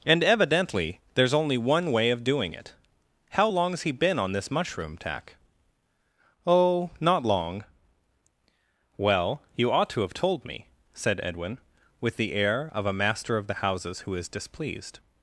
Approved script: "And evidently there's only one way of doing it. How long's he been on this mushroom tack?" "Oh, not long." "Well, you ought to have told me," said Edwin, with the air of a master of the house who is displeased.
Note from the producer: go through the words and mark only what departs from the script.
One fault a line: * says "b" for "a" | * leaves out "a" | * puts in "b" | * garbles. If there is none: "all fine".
* says "houses" for "house"